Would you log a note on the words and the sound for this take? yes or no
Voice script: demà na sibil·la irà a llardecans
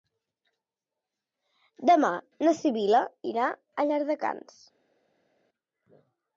no